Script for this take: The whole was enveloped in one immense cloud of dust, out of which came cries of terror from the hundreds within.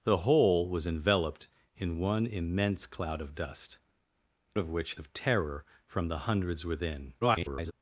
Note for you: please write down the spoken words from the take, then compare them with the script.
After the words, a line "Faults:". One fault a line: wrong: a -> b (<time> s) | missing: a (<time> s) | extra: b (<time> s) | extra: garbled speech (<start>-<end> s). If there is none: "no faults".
The whole was enveloped in one immense cloud of dust, of which of terror from the hundreds within. [garbled]
Faults:
missing: out (3.8 s)
missing: came cries (5.0 s)
extra: garbled speech (7.2-7.7 s)